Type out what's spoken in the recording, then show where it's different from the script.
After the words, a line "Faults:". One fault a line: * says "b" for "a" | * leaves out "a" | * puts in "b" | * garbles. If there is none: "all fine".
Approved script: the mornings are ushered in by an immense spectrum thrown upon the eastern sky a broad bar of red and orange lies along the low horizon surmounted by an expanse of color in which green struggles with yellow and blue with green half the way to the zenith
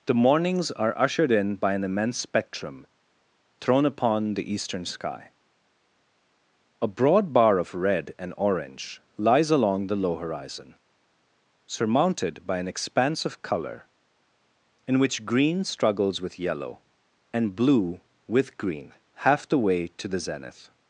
the mornings are ushered in by an immense spectrum thrown upon the eastern sky a broad bar of red and orange lies along the low horizon surmounted by an expanse of color in which green struggles with yellow and blue with green half the way to the zenith
Faults:
all fine